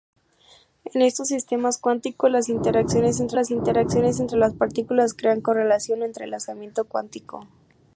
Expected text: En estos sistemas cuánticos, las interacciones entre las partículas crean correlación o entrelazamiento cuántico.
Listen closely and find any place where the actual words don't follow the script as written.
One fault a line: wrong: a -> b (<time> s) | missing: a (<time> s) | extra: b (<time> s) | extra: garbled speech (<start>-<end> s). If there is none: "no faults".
extra: interacciones entre las (3.5 s)